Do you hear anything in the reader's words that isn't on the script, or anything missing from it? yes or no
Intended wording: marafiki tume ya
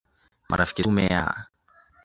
no